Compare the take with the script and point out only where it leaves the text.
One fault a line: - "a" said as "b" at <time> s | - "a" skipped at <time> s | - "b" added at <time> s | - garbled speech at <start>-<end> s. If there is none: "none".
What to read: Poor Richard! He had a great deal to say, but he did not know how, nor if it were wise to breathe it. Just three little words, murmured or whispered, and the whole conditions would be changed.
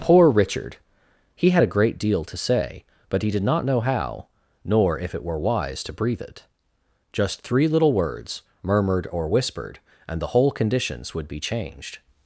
none